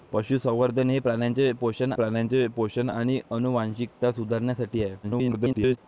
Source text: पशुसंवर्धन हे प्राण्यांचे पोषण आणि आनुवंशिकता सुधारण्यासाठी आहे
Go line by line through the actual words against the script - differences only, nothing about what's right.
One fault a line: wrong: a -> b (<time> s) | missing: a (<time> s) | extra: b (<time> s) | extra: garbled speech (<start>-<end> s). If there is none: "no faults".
extra: प्राण्यांचे पोषण (1.9 s)
extra: garbled speech (5.0-5.8 s)